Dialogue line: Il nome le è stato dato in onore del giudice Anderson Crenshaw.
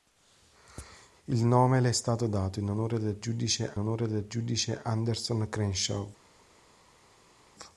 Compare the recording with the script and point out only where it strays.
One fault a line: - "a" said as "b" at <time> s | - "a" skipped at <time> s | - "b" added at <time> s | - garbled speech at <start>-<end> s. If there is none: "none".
- "onore del giudice" added at 3.8 s